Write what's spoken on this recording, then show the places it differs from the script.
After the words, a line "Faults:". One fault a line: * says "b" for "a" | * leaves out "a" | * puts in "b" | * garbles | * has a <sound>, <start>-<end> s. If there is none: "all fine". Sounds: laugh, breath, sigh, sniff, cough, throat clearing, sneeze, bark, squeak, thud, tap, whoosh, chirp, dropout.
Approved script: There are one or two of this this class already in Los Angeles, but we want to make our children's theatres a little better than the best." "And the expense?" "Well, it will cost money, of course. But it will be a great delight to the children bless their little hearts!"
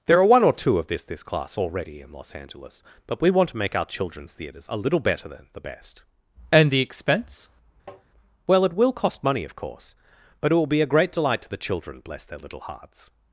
There are one or two of this this class already in Los Angeles, but we want to make our children's theatres a little better than the best." "And the expense?" "Well, it will cost money, of course. But it will be a great delight to the children bless their little hearts!"
Faults:
* has a tap, 7.9-8.0 s